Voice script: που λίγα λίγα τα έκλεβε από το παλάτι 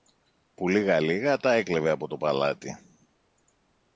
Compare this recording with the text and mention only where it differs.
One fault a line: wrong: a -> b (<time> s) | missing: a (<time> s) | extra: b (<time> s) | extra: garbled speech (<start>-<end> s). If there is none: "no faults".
no faults